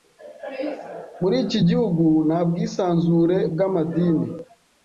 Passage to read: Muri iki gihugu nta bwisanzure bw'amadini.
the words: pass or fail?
pass